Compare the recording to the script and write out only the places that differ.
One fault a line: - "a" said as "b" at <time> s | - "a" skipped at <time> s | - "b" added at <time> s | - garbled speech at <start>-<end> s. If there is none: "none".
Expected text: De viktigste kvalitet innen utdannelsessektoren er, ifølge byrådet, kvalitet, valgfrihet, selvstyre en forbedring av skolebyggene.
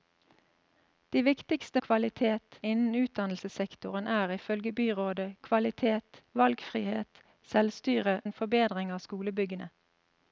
none